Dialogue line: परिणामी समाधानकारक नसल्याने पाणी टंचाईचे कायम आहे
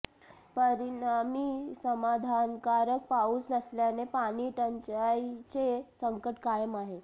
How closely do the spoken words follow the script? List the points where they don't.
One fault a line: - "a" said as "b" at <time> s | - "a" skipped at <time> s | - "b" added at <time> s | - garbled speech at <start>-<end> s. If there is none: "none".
- "पाऊस" added at 3.1 s
- "संकट" added at 6.0 s